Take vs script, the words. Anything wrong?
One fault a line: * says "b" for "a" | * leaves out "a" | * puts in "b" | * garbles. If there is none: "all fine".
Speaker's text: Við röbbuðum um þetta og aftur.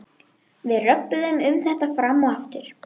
* puts in "fram"